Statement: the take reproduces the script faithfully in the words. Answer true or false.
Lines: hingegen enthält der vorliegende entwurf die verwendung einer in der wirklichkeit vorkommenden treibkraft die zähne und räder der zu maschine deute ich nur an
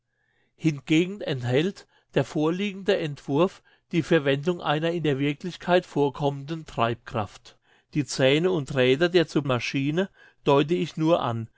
true